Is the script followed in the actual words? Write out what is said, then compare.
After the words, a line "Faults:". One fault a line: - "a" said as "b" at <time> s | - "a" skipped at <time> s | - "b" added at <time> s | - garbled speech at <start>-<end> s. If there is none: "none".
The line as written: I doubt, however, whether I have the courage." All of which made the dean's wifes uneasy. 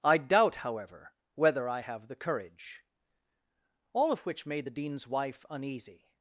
I doubt, however, whether I have the courage." All of which made the dean's wife uneasy.
Faults:
- "wifes" said as "wife" at 5.1 s